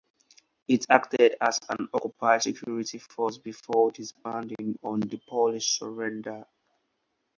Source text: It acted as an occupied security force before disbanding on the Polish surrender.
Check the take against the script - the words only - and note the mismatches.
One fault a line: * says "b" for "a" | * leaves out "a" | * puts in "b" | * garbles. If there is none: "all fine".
all fine